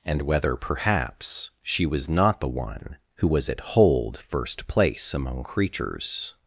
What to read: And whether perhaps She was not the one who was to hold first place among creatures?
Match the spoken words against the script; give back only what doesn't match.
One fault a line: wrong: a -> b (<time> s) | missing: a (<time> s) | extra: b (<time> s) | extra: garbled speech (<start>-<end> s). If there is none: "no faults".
wrong: to -> at (3.5 s)